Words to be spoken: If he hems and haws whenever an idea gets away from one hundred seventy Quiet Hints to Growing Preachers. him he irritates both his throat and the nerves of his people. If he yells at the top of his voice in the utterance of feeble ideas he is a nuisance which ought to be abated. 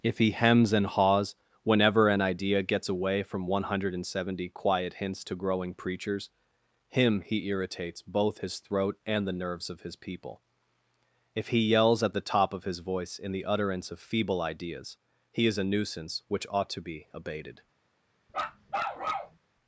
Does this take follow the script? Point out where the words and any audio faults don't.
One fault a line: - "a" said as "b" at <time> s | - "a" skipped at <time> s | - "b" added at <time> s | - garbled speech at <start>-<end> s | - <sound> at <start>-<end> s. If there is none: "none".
- bark at 18.3-19.4 s